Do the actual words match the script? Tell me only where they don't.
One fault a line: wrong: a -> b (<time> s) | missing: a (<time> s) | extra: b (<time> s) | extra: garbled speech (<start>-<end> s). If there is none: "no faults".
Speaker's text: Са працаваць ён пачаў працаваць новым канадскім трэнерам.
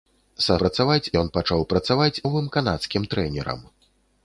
no faults